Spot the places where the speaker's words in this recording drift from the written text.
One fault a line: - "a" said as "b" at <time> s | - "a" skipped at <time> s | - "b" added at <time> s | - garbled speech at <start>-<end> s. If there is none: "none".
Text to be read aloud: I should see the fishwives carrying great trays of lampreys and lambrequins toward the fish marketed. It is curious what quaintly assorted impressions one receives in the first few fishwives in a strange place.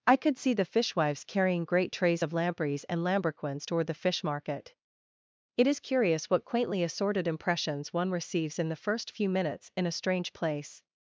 - "should" said as "could" at 0.1 s
- "marketed" said as "market" at 4.2 s
- "fishwives" said as "minutes" at 9.3 s